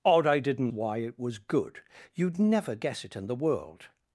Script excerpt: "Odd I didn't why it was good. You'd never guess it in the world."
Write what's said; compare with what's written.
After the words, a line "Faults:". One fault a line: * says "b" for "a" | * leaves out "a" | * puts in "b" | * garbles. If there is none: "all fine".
"Odd I didn't why it was good. You'd never guess it in the world."
Faults:
all fine